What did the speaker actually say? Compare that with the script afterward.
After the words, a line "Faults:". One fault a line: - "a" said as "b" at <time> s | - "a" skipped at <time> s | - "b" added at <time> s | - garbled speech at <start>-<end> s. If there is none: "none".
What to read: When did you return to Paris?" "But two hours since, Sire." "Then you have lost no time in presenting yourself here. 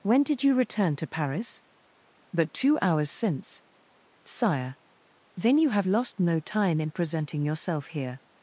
When did you return to Paris?" "But two hours since, Sire." "Then you have lost no time in presenting yourself here.
Faults:
none